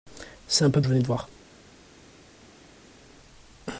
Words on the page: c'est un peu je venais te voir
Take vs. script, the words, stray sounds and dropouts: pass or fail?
pass